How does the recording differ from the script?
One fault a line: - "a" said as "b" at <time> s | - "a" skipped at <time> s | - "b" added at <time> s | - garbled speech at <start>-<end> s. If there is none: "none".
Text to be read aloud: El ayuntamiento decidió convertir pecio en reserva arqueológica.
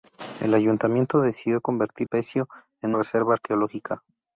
none